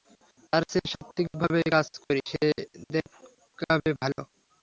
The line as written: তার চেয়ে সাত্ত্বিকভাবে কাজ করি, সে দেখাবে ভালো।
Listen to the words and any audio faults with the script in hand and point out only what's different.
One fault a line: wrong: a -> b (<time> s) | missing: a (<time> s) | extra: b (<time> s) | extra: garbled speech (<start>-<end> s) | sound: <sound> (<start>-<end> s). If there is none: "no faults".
no faults